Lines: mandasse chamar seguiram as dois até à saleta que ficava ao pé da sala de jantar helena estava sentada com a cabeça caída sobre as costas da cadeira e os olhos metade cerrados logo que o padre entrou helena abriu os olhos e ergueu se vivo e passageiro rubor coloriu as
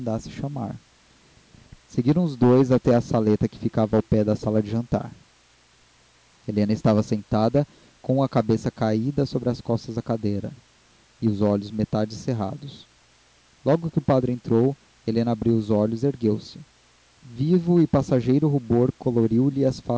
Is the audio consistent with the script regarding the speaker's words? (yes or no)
no